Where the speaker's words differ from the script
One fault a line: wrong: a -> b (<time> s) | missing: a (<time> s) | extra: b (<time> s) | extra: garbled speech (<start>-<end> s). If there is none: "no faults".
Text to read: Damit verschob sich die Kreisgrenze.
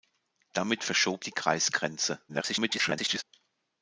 missing: sich (1.2 s)
extra: garbled speech (2.3-3.2 s)